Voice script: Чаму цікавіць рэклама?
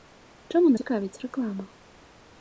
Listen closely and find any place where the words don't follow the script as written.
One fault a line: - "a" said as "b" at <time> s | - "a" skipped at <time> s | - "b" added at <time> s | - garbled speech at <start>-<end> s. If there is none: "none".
none